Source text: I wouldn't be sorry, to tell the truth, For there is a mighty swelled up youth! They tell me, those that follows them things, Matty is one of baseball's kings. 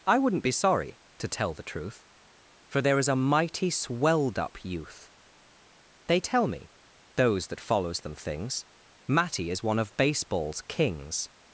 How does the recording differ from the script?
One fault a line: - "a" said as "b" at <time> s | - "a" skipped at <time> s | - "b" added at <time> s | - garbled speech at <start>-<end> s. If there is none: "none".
none